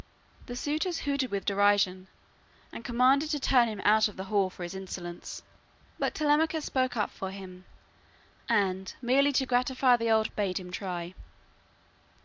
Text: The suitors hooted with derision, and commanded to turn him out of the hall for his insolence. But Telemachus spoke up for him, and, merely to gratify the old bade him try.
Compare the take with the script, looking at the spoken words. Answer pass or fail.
pass